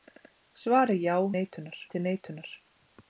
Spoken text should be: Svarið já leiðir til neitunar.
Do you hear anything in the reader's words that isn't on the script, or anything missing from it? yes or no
yes